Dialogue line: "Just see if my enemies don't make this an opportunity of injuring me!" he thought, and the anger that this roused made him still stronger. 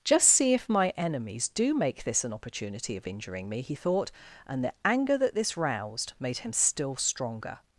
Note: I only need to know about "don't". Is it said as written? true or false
false